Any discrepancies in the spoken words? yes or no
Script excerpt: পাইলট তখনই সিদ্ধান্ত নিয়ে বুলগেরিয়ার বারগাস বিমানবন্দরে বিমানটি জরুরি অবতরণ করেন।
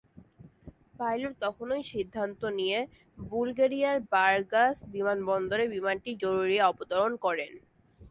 no